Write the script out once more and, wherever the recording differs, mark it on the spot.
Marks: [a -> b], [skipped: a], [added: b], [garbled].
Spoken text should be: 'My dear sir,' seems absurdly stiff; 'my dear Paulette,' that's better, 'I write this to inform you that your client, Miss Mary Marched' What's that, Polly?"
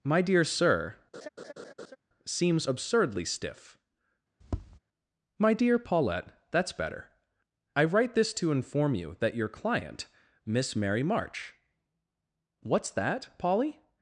'My dear sir,' seems absurdly stiff; 'my dear Paulette,' that's better, 'I write this to inform you that your client, Miss Mary [Marched' -> March] What's that, Polly?"